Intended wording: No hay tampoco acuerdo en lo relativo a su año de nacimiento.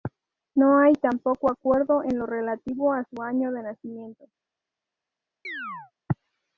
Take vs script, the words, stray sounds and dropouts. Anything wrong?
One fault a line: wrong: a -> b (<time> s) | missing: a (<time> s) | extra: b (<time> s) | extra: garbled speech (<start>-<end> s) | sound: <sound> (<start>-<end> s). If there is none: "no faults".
sound: chirp (5.4-5.9 s)